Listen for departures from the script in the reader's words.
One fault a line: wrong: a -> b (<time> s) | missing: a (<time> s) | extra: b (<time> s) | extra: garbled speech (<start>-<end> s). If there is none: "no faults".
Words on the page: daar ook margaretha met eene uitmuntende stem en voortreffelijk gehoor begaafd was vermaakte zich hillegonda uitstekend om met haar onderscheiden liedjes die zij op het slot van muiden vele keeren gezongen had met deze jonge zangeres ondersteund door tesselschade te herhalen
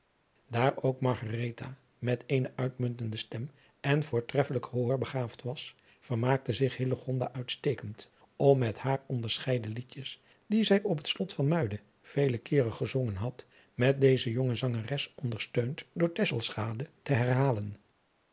no faults